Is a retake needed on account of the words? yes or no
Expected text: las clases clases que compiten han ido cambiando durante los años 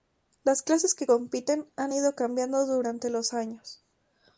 yes